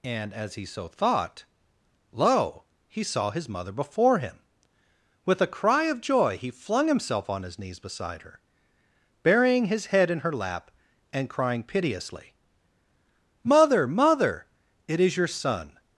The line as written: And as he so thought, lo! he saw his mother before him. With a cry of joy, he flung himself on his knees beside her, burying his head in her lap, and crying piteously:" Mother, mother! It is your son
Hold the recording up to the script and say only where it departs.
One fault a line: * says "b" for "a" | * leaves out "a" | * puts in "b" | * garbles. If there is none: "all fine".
all fine